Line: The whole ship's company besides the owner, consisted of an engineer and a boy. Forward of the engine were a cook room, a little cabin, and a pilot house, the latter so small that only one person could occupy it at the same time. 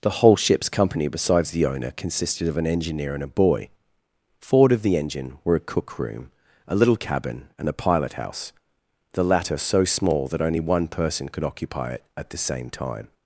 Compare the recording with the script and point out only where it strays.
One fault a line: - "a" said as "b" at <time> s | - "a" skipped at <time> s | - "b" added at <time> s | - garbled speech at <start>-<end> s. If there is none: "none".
none